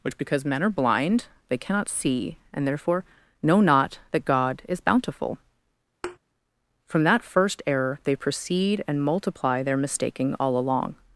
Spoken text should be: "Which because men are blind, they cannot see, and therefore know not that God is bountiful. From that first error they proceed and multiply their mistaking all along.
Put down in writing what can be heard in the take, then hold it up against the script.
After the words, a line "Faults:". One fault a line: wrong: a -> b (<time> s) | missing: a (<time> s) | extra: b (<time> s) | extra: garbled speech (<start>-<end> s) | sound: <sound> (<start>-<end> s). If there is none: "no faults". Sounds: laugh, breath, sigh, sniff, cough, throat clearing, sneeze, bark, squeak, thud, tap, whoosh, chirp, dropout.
"Which because men are blind, they cannot see, and therefore know not that God is bountiful. From that first error they proceed and multiply their mistaking all along.
Faults:
sound: thud (6.0-6.2 s)